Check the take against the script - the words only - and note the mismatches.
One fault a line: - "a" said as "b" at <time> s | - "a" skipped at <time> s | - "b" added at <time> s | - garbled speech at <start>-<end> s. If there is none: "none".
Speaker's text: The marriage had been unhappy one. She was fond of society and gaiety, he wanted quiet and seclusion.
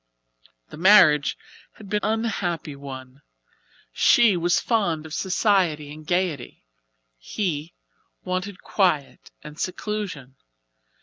none